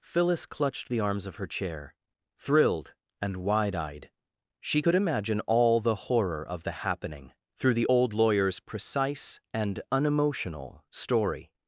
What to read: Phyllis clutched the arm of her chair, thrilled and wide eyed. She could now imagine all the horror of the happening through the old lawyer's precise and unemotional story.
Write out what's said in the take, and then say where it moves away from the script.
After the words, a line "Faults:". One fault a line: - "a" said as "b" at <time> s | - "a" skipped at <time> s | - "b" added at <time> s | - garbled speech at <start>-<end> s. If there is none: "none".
Phyllis clutched the arms of her chair, thrilled and wide eyed. She could imagine all the horror of the happening through the old lawyer's precise and unemotional story.
Faults:
- "arm" said as "arms" at 1.0 s
- "now" skipped at 4.9 s